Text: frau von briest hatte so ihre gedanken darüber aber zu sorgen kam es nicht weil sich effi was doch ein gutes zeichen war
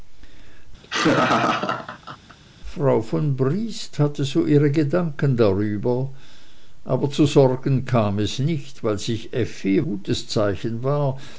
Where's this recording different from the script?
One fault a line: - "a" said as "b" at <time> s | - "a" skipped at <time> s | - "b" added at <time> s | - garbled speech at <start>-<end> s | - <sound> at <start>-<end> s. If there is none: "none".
- laugh at 0.8-2.4 s
- "was doch ein" skipped at 9.8 s